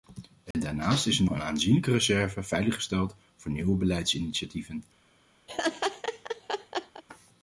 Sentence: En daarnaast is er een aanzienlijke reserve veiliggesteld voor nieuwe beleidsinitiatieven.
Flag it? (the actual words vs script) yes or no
no